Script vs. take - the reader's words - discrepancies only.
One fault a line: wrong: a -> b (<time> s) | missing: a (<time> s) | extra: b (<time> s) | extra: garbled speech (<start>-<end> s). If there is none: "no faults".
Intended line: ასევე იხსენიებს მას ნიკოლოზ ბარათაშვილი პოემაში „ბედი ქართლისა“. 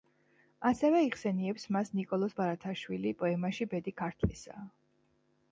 no faults